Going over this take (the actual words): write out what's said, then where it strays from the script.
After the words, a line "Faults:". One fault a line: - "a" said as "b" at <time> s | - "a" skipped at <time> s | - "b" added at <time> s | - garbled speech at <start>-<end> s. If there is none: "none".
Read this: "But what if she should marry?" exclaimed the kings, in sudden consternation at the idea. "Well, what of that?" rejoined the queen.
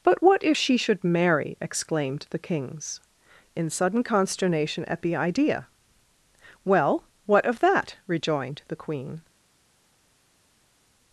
"But what if she should marry?" exclaimed the kings, in sudden consternation at the idea. "Well, what of that?" rejoined the queen.
Faults:
none